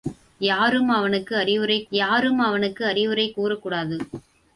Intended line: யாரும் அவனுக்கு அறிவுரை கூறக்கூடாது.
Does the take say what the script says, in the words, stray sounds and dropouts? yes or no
no